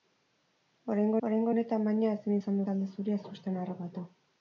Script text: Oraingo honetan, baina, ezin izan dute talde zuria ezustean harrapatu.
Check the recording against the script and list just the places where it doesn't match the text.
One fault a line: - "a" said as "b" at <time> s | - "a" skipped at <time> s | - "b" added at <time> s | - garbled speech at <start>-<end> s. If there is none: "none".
- "oraingo" added at 1.3 s
- "dute" skipped at 2.6 s